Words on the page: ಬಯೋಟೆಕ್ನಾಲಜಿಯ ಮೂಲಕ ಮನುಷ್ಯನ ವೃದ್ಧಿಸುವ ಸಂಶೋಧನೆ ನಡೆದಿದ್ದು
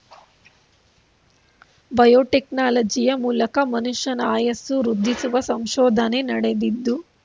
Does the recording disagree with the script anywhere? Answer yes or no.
yes